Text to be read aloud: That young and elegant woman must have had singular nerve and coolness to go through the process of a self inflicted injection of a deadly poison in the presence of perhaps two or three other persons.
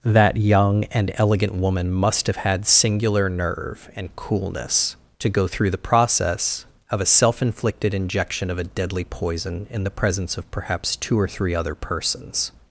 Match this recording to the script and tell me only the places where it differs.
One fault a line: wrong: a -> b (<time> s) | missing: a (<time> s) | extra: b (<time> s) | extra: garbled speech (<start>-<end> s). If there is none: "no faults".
no faults